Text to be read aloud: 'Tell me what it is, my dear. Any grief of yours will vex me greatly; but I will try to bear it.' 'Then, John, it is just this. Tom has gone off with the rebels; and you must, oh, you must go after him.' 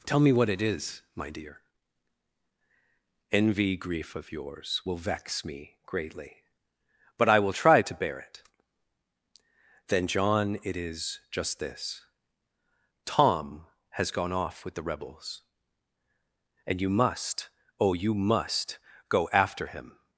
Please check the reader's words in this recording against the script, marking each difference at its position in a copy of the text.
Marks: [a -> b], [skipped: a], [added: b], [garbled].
'Tell me what it is, my dear. [Any -> Envy] grief of yours will vex me greatly; but I will try to bear it.' 'Then, John, it is just this. Tom has gone off with the rebels; and you must, oh, you must go after him.'